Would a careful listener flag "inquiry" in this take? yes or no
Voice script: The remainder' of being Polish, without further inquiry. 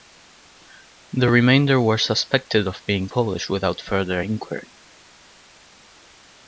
no